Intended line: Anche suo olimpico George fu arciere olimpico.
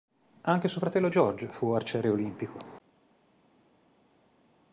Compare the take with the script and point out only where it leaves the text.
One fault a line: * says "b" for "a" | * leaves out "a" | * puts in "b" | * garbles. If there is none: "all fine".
* says "fratello" for "olimpico"